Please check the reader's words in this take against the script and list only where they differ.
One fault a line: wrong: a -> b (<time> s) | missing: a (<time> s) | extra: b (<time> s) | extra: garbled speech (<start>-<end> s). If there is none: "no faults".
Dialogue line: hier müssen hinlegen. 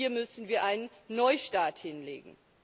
extra: wir einen Neustart (0.5 s)